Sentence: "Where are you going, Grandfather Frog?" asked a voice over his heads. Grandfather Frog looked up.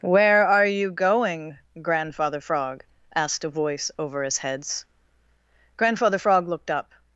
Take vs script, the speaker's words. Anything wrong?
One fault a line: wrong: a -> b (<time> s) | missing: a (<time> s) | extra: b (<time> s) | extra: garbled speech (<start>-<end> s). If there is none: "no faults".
no faults